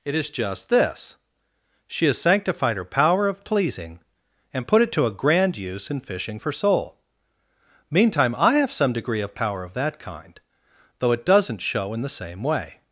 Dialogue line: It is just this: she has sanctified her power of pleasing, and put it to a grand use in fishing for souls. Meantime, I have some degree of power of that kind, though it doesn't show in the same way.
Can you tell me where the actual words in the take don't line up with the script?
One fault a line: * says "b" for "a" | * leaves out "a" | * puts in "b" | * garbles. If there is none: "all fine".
* says "soul" for "souls"